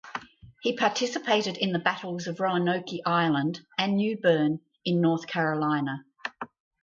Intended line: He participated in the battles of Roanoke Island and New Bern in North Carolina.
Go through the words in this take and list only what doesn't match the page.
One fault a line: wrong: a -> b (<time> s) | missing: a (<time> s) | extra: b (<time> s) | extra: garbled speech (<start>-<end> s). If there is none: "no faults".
no faults